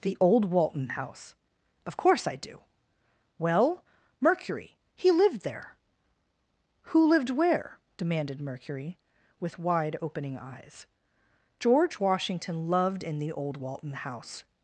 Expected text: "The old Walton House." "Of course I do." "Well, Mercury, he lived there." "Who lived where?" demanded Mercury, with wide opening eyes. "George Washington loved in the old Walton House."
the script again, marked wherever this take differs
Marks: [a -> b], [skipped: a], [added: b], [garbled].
"The old Walton House." "Of course I do." "Well, Mercury, he lived there." "Who lived where?" demanded Mercury, with wide opening eyes. "George Washington loved in the old Walton House."